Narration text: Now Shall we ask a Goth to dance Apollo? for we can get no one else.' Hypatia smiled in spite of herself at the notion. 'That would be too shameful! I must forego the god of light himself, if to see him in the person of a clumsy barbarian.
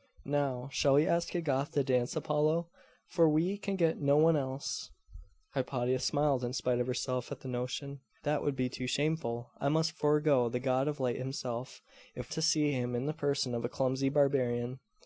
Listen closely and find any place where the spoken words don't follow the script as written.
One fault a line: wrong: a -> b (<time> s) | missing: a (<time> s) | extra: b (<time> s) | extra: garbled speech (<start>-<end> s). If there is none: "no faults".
no faults